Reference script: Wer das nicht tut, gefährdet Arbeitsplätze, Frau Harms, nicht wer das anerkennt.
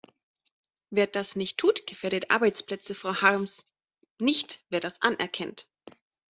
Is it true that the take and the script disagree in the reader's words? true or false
false